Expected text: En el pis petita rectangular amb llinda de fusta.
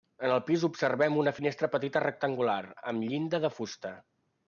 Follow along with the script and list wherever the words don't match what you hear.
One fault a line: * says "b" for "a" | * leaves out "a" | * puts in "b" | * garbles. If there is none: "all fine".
* puts in "observem una finestra"